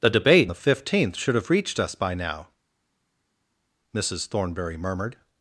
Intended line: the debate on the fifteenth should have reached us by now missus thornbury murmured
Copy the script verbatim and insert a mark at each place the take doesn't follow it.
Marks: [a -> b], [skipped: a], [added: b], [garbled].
the debate [skipped: on] the fifteenth should have reached us by now missus thornbury murmured